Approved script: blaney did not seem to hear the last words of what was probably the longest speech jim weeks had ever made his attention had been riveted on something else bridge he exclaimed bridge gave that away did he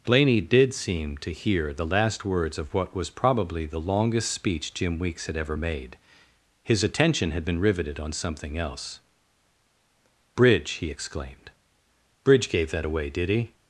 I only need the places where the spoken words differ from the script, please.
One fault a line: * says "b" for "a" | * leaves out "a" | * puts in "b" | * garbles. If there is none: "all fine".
* leaves out "not"